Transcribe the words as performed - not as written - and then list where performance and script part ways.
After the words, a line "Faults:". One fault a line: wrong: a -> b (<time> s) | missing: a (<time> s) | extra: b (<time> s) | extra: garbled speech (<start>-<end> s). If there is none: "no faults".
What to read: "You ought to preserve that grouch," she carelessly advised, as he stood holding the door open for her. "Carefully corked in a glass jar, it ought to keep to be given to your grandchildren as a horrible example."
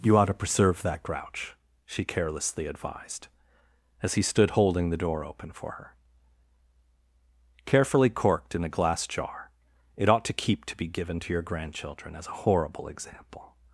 "You ought to preserve that grouch," she carelessly advised, as he stood holding the door open for her. "Carefully corked in a glass jar, it ought to keep to be given to your grandchildren as a horrible example."
Faults:
no faults